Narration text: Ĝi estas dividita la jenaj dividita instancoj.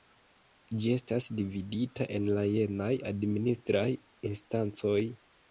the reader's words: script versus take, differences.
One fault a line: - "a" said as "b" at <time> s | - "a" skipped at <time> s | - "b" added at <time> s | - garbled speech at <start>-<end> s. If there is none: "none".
- "en" added at 2.1 s
- "dividita" said as "administraj" at 3.1 s